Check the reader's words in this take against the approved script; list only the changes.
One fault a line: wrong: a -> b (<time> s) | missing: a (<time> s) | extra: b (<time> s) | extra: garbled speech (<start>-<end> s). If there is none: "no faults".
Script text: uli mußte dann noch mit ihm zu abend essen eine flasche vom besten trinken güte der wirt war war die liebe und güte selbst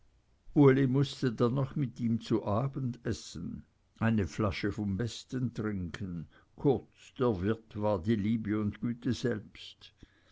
wrong: güte -> kurz (6.6 s)
missing: war (8.0 s)